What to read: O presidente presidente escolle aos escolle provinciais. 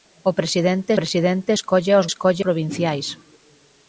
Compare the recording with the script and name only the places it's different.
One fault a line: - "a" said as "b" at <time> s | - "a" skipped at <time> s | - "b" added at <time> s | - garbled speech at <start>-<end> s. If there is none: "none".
none